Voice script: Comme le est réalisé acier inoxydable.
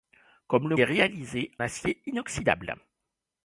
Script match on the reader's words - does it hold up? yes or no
yes